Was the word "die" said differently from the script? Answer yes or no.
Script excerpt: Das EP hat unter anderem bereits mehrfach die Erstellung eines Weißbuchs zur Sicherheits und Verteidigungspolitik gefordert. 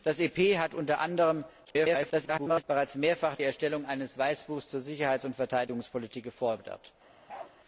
yes